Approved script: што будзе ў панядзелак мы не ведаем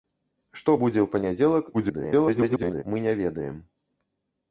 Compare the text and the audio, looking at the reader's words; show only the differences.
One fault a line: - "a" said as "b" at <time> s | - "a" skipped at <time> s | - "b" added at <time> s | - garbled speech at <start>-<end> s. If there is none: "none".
- garbled speech at 1.7-2.8 s